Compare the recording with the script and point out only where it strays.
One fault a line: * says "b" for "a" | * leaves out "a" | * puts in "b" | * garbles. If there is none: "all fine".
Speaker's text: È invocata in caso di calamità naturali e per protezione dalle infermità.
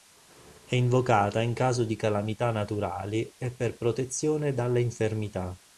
all fine